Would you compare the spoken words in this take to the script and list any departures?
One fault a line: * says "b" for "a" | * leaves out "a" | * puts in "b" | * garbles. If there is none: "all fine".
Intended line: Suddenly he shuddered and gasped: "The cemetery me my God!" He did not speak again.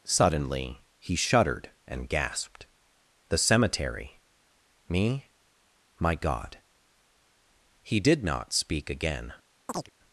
all fine